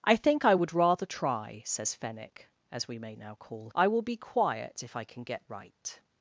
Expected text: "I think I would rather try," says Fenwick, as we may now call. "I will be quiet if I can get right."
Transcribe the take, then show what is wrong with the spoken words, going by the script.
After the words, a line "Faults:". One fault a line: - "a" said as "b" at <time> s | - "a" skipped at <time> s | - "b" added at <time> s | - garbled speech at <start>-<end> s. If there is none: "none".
"I think I would rather try," says Fenwick, as we may now call. "I will be quiet if I can get right."
Faults:
none